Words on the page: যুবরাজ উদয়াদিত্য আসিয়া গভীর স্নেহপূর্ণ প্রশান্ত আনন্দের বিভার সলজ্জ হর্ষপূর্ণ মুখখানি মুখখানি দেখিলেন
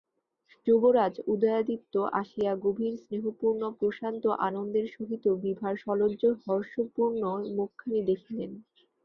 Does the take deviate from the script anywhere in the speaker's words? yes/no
yes